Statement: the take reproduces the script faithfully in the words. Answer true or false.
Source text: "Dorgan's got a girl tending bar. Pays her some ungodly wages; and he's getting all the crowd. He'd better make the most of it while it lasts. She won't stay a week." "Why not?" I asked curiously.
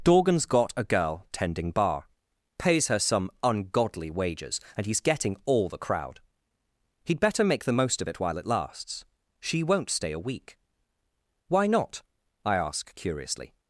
false